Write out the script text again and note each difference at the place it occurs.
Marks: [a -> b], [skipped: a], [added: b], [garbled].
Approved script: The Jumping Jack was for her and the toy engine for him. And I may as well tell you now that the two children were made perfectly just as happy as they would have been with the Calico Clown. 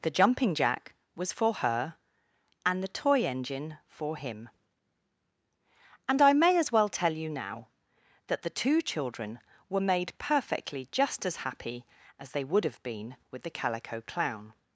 The Jumping Jack was for her and the toy engine for him. And I may as well tell you now that the two children were made perfectly just as happy as they would have been with the Calico Clown.